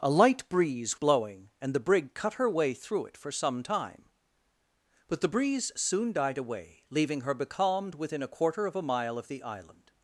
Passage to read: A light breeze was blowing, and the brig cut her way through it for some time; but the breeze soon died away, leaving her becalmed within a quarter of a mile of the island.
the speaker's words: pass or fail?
fail